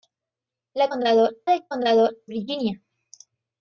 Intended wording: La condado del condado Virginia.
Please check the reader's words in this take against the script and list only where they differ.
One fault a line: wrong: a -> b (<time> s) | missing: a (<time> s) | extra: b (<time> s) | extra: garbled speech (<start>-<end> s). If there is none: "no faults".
no faults